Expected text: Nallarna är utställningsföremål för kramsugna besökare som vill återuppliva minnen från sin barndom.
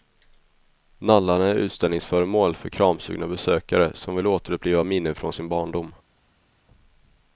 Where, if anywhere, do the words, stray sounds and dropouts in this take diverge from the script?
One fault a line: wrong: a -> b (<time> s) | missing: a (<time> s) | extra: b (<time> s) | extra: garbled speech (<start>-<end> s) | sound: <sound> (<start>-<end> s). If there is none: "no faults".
no faults